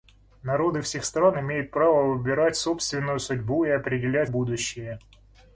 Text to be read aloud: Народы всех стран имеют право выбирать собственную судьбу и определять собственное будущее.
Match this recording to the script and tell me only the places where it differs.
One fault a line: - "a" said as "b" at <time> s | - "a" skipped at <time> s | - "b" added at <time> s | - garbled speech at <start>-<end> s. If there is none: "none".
- "собственное" skipped at 4.3 s